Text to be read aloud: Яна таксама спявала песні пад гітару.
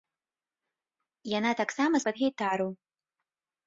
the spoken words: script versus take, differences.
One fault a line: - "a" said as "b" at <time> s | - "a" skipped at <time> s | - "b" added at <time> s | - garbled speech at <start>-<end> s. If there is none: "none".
- "спявала песні" skipped at 1.9 s